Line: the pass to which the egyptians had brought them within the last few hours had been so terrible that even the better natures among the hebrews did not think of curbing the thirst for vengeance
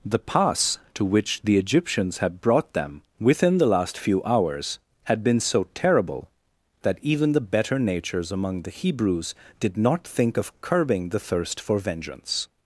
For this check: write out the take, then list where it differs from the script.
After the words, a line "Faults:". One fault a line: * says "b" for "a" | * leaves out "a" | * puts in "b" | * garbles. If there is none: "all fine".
the pass to which the egyptians had brought them within the last few hours had been so terrible that even the better natures among the hebrews did not think of curbing the thirst for vengeance
Faults:
all fine